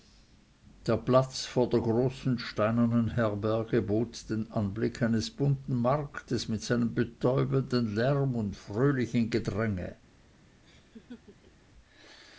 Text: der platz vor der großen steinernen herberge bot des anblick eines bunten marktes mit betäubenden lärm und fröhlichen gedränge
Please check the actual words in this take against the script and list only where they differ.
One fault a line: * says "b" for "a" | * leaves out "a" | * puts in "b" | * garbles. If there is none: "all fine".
* says "den" for "des"
* puts in "seinem"